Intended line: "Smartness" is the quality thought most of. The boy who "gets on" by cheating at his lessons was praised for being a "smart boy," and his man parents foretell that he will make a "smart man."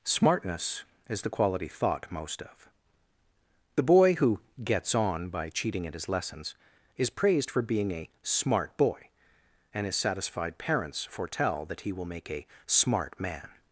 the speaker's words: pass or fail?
fail